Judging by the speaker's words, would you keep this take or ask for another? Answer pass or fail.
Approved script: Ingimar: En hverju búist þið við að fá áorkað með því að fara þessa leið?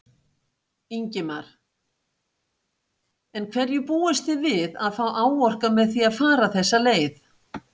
pass